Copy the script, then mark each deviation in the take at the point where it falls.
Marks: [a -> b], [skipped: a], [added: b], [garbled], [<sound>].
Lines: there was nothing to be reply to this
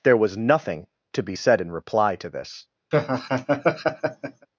there was nothing to be [added: said in] reply to this [laugh]